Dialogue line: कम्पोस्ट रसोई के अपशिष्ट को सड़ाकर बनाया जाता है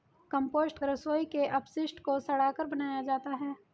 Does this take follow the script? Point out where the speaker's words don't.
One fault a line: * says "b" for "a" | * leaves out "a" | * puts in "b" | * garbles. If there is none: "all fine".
all fine